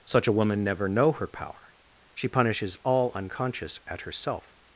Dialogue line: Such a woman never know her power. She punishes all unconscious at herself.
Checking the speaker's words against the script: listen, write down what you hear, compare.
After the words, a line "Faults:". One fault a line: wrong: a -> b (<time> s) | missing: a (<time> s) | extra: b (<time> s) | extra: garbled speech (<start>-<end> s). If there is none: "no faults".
Such a woman never know her power. She punishes all unconscious at herself.
Faults:
no faults